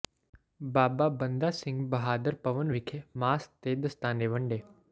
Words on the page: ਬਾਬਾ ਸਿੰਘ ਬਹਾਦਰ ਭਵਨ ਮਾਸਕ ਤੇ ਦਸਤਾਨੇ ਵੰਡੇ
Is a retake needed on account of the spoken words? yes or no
yes